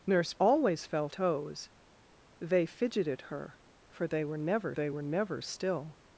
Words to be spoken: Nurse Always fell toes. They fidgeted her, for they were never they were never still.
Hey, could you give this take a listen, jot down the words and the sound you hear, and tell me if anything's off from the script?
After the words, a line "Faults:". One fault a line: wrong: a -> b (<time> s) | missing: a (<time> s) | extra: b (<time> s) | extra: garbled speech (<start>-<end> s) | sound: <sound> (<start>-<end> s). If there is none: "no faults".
Nurse Always fell toes. They fidgeted her, for they were never they were never still.
Faults:
no faults